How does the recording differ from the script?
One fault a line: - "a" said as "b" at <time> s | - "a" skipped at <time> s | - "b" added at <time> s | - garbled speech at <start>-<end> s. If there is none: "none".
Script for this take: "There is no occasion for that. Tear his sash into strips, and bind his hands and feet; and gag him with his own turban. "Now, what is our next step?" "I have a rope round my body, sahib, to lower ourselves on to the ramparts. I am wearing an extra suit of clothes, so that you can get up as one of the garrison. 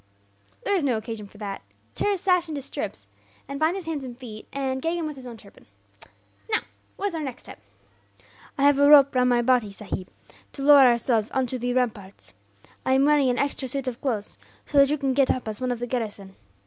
none